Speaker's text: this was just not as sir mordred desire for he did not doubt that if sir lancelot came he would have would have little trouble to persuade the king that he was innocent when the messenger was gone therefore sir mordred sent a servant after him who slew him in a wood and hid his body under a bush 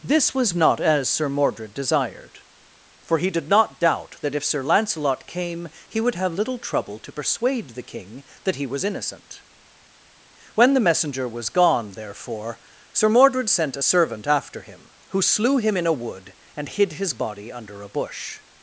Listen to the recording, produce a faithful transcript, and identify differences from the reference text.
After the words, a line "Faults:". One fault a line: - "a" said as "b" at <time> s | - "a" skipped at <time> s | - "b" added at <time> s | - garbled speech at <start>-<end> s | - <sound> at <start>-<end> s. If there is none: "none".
this was not as sir mordred desired for he did not doubt that if sir lancelot came he would have little trouble to persuade the king that he was innocent when the messenger was gone therefore sir mordred sent a servant after him who slew him in a wood and hid his body under a bush
Faults:
- "just" skipped at 0.6 s
- "desire" said as "desired" at 1.8 s
- "would have" skipped at 6.3 s